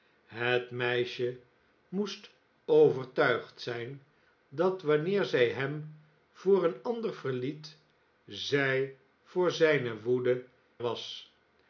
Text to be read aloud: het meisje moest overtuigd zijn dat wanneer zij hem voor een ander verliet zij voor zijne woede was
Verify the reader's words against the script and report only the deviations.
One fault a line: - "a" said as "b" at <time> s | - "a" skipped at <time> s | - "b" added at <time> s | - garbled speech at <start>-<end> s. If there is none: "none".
none